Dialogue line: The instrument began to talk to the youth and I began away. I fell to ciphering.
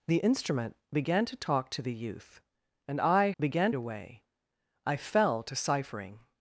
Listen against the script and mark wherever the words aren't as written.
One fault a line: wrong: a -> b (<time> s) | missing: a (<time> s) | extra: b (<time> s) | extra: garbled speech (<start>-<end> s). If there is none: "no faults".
no faults